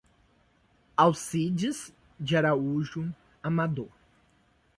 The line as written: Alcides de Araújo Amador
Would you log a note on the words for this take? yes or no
no